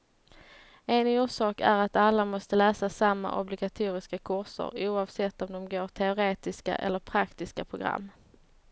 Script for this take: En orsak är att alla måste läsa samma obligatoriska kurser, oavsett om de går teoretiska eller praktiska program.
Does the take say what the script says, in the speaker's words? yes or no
yes